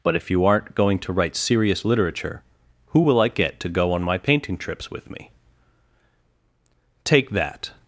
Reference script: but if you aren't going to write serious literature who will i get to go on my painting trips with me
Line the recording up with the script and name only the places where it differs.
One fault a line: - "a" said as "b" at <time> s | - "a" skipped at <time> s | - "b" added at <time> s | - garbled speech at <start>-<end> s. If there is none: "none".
- "take that" added at 7.0 s